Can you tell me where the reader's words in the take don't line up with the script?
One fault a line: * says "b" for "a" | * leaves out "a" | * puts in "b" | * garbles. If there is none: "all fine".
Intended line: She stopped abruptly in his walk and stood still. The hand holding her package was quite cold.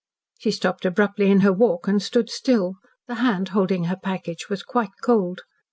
* says "her" for "his"